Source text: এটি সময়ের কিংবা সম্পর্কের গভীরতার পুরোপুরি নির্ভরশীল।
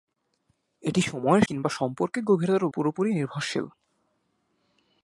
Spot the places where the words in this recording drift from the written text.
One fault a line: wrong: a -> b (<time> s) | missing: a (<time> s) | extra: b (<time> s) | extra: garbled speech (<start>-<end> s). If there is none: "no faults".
no faults